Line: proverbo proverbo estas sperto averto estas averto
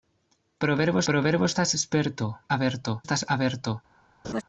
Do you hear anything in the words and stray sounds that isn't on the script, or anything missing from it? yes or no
yes